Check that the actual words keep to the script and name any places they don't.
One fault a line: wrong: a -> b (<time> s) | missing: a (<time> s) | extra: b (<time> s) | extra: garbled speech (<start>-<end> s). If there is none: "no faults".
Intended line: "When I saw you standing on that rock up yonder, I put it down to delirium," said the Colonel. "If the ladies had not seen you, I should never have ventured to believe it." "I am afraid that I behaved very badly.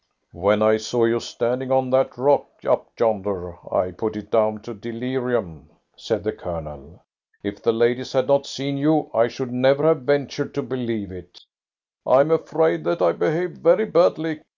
no faults